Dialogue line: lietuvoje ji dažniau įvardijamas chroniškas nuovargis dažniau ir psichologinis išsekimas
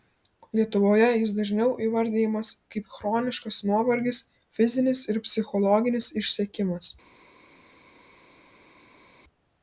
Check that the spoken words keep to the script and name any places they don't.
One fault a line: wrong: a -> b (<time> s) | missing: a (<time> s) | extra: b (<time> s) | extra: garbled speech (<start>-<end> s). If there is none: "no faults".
wrong: ji -> jis (1.2 s)
extra: kaip (2.8 s)
wrong: dažniau -> fizinis (4.6 s)